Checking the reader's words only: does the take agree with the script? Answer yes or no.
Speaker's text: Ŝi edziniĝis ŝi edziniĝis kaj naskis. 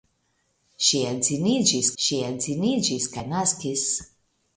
yes